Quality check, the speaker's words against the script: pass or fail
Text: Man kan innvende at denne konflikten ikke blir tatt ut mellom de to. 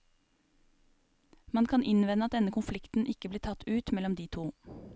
pass